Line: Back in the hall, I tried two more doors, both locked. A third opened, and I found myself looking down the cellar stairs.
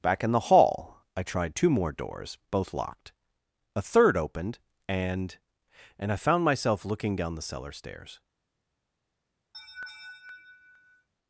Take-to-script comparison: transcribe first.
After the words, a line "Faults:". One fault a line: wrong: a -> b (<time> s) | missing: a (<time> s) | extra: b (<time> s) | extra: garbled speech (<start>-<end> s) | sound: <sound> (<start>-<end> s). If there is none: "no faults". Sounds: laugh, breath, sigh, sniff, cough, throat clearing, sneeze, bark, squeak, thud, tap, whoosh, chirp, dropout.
Back in the hall, I tried two more doors, both locked. A third opened, and and I found myself looking down the cellar stairs.
Faults:
extra: and (6.0 s)
sound: laugh (9.5-11.1 s)